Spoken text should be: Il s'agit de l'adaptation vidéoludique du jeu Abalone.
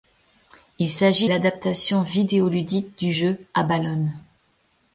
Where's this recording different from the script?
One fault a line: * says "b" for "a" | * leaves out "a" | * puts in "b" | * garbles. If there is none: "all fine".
* leaves out "de"